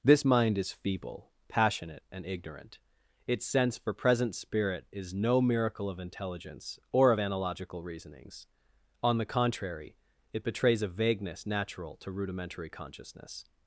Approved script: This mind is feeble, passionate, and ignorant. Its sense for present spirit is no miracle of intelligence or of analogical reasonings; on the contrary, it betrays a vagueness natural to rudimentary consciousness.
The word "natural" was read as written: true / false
true